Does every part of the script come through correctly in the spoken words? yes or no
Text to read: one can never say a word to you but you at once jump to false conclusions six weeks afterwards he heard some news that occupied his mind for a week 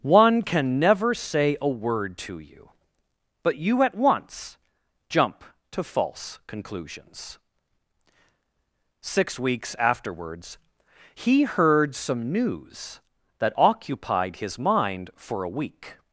yes